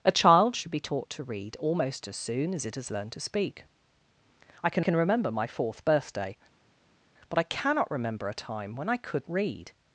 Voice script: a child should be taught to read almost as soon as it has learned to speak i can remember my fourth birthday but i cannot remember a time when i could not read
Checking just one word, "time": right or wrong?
right